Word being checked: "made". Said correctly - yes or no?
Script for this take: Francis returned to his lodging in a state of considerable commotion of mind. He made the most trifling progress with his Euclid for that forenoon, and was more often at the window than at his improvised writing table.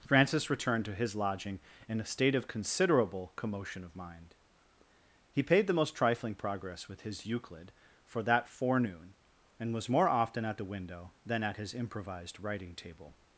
no